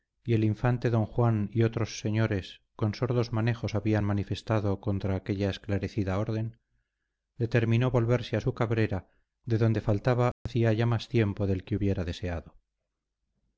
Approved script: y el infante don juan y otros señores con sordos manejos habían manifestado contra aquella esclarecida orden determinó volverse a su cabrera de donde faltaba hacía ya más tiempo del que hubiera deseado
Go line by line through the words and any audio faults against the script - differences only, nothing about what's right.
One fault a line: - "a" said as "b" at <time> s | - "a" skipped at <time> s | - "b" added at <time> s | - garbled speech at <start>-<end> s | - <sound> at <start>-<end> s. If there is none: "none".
- dropout at 10.3-10.5 s